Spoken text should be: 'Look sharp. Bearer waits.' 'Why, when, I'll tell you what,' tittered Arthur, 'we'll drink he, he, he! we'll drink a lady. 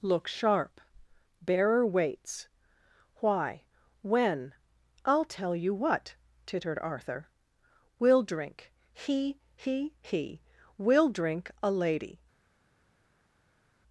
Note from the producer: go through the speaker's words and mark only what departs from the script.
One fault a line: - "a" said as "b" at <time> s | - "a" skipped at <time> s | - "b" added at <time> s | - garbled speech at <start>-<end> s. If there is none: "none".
none